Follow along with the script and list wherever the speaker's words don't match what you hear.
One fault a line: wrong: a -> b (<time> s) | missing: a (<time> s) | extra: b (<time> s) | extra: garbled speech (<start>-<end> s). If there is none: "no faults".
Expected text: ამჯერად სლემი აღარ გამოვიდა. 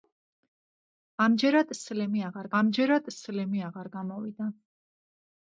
extra: ამჯერად სლემი აღარ (2.6 s)